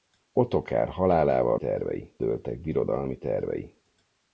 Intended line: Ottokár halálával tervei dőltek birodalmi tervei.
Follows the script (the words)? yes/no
yes